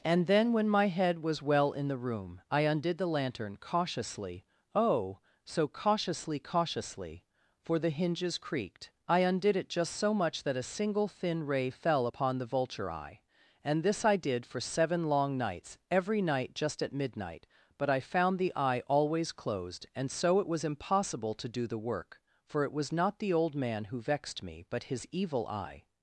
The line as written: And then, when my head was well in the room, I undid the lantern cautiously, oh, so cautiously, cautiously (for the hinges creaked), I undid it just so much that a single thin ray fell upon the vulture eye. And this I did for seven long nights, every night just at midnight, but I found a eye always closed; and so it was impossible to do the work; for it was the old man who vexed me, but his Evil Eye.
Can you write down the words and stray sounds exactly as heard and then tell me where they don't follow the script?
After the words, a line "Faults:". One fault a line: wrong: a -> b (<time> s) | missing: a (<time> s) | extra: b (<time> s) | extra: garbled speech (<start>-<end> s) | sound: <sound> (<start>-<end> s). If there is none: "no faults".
And then, when my head was well in the room, I undid the lantern cautiously, oh, so cautiously, cautiously (for the hinges creaked), I undid it just so much that a single thin ray fell upon the vulture eye. And this I did for seven long nights, every night just at midnight, but I found the eye always closed; and so it was impossible to do the work; for it was not the old man who vexed me, but his Evil Eye.
Faults:
wrong: a -> the (18.4 s)
extra: not (22.9 s)